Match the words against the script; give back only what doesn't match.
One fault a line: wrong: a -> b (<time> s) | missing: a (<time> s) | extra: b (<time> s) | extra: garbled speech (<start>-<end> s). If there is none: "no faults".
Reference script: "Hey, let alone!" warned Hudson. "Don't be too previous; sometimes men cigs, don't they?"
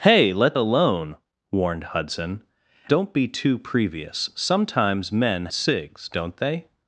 no faults